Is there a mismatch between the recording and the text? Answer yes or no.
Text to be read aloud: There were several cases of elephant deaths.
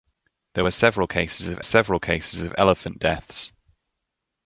yes